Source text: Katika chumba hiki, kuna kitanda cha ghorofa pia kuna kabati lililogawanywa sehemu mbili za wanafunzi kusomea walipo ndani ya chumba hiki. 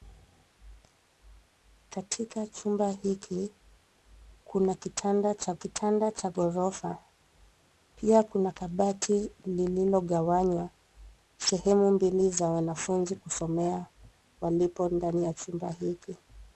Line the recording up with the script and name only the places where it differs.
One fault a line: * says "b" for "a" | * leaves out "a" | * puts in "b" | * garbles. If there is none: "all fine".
* puts in "kitanda cha"